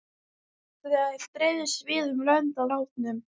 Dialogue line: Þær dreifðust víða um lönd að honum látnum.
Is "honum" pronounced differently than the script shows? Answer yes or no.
yes